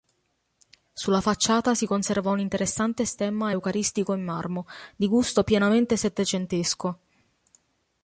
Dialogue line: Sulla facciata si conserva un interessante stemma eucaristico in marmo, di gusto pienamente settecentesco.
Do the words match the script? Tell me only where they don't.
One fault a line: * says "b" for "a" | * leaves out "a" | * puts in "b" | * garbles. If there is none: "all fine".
all fine